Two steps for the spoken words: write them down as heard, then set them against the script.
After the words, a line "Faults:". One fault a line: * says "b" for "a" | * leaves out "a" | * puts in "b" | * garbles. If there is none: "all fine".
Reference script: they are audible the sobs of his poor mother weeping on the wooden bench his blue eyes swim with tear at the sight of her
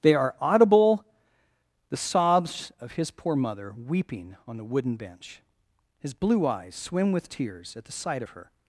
they are audible the sobs of his poor mother weeping on the wooden bench his blue eyes swim with tears at the sight of her
Faults:
* says "tears" for "tear"